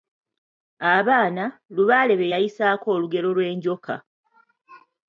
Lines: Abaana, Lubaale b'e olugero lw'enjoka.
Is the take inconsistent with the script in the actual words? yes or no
yes